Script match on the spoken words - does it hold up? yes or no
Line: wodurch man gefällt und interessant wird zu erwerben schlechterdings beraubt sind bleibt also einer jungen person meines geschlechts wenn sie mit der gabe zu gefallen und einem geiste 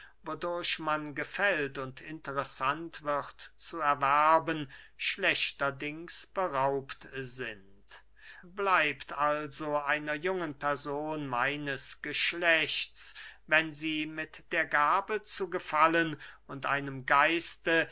yes